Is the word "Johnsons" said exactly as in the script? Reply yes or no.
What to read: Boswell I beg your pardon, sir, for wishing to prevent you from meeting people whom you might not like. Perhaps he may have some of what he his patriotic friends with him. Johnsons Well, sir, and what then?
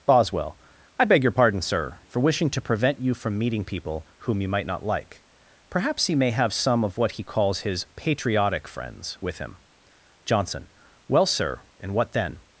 no